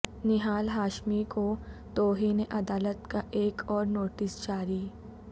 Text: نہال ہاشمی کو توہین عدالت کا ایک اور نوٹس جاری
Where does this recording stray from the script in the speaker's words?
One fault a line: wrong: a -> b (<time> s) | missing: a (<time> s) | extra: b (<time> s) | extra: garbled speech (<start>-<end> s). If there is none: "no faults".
no faults